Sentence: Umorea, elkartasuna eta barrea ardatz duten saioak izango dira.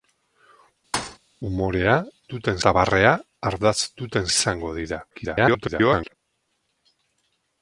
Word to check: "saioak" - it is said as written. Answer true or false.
false